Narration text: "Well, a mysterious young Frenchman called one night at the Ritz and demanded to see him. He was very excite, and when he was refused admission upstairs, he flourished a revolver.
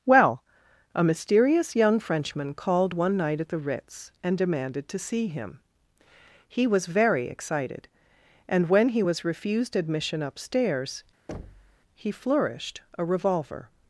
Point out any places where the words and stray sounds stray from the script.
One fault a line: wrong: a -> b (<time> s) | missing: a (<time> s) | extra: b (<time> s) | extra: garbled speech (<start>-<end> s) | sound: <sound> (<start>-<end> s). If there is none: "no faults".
wrong: excite -> excited (7.3 s)
sound: thud (11.3-11.8 s)